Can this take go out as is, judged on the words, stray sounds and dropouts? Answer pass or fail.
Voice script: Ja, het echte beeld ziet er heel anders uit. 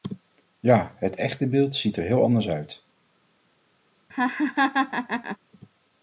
fail